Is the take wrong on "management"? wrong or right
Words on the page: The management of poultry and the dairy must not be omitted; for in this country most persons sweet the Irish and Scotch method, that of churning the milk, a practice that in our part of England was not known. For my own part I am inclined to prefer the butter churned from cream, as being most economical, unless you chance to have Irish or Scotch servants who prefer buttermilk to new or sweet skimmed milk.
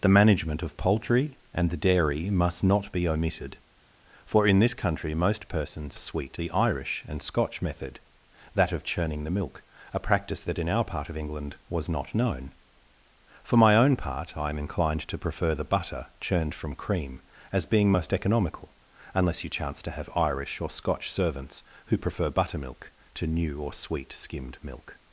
right